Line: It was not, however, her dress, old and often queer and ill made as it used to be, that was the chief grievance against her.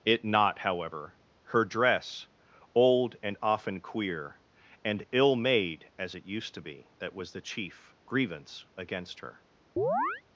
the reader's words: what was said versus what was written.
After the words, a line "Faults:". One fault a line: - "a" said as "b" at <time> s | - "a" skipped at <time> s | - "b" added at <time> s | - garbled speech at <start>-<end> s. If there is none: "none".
It not, however, her dress, old and often queer and ill made as it used to be, that was the chief grievance against her.
Faults:
- "was" skipped at 0.2 s